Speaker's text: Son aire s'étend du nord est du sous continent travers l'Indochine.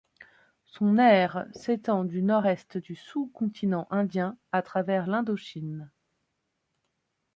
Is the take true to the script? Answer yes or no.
no